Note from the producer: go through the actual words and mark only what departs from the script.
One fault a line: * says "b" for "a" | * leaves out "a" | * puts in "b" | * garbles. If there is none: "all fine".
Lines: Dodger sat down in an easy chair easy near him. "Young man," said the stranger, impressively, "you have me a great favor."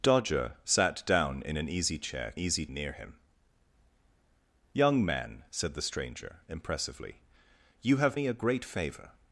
all fine